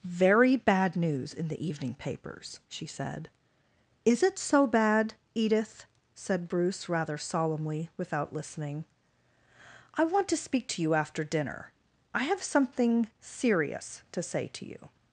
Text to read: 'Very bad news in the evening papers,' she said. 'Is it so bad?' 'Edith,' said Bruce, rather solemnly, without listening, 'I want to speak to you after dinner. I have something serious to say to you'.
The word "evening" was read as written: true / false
true